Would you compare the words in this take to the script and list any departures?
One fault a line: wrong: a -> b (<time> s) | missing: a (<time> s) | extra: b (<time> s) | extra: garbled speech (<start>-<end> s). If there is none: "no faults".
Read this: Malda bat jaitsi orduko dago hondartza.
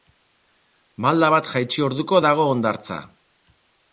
no faults